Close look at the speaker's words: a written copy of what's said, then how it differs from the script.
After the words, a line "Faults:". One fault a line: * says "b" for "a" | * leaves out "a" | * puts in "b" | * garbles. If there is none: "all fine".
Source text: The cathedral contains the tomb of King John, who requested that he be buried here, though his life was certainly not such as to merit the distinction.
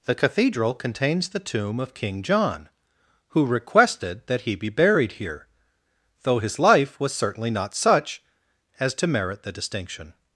The cathedral contains the tomb of King John, who requested that he be buried here, though his life was certainly not such as to merit the distinction.
Faults:
all fine